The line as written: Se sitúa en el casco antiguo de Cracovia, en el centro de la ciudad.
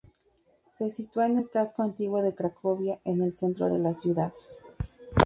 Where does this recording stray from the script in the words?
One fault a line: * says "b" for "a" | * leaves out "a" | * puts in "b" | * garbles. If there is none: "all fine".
all fine